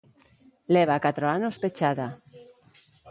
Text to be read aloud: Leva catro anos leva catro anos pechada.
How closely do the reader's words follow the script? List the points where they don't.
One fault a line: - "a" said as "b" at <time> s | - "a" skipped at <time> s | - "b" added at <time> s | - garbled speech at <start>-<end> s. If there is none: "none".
- "leva catro anos" skipped at 1.6 s